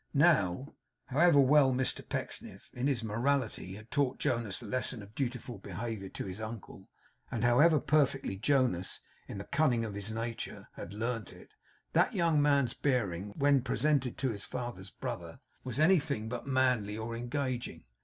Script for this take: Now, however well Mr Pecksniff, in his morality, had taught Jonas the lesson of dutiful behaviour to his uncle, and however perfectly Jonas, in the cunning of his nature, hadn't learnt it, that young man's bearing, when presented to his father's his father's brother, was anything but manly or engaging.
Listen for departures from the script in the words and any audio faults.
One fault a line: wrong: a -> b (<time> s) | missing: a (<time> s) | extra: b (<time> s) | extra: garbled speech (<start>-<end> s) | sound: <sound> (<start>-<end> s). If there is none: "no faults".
wrong: hadn't -> had (10.7 s)
missing: his father's (14.9 s)